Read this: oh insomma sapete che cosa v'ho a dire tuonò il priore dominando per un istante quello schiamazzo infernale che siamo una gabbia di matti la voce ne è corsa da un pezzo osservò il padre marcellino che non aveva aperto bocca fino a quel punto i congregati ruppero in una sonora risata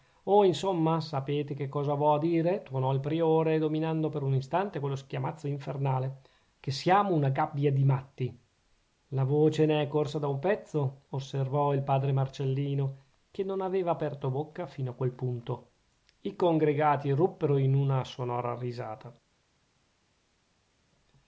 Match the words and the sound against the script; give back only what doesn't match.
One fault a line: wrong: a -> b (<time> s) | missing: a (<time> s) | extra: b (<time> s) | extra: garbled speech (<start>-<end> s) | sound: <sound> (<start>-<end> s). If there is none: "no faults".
no faults